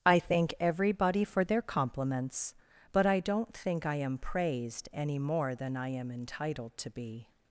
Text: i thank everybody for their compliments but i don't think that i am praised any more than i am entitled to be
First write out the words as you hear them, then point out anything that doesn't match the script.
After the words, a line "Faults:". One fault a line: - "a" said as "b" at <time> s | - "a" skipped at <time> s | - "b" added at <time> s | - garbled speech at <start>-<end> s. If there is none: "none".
i thank everybody for their compliments but i don't think i am praised any more than i am entitled to be
Faults:
- "that" skipped at 3.9 s